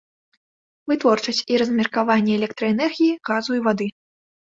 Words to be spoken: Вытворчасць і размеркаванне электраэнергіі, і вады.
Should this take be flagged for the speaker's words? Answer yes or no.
yes